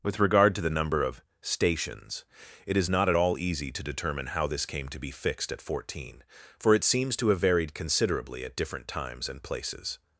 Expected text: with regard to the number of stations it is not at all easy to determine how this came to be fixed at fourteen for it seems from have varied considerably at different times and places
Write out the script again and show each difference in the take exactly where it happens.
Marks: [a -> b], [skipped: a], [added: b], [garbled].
with regard to the number of stations it is not at all easy to determine how this came to be fixed at fourteen for it seems [from -> to] have varied considerably at different times and places